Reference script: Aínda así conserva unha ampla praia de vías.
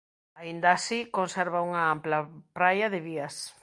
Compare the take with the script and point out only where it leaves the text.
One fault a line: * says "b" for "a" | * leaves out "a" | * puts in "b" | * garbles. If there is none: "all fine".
all fine